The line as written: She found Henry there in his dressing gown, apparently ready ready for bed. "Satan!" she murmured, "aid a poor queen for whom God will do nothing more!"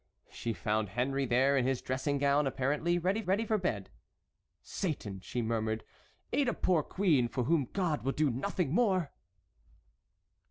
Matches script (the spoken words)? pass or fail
pass